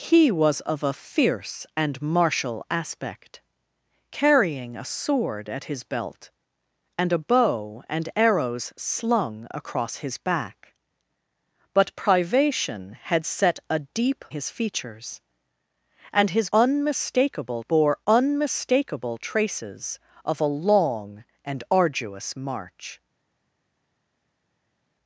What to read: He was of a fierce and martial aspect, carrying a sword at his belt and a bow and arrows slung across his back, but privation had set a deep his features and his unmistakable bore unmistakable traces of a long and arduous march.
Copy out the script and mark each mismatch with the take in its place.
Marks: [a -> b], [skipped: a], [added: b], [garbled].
He was of a fierce and martial aspect, carrying a sword at his belt and a bow and arrows slung across his back, but privation had set a deep his features and his unmistakable bore unmistakable traces of a long and arduous march.